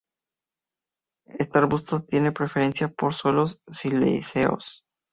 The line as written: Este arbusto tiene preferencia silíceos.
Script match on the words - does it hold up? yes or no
no